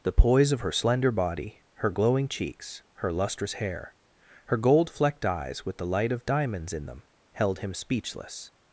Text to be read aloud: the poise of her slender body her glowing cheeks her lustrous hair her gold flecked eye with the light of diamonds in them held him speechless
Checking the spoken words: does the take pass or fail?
fail